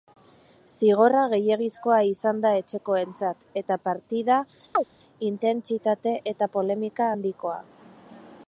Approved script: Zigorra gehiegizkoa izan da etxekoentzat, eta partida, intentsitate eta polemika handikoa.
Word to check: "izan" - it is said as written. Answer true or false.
true